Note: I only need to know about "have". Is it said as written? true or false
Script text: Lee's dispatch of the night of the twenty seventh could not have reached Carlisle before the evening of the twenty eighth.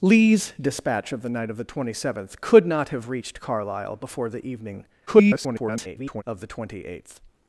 true